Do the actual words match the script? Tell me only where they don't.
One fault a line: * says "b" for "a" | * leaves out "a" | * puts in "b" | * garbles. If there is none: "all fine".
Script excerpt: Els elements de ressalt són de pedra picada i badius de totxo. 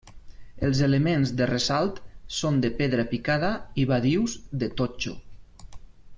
all fine